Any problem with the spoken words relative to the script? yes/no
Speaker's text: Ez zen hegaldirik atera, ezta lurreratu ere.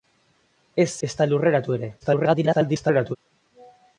yes